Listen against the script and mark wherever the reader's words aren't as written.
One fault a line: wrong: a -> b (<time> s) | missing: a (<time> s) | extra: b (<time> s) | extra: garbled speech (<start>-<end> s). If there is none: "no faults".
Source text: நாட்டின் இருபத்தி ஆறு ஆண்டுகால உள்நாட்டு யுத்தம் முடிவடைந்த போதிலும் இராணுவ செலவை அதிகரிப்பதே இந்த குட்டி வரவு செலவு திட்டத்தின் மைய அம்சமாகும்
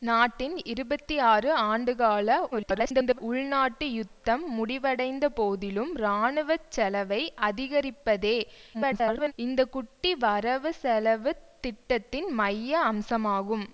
extra: garbled speech (2.5-3.2 s)
extra: garbled speech (8.7-9.3 s)